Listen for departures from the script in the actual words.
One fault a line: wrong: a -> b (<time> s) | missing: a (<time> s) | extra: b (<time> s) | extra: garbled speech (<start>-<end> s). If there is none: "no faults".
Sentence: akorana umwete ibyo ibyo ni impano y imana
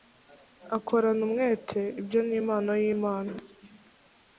missing: ibyo (2.2 s)